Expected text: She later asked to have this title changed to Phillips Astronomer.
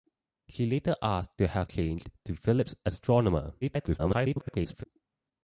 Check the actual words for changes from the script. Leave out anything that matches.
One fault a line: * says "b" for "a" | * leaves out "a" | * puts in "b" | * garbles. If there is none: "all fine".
* leaves out "this title"
* garbles